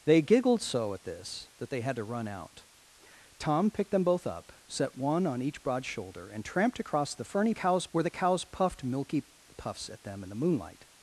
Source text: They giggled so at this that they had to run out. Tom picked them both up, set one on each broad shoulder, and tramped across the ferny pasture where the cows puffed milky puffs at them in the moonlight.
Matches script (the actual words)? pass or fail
fail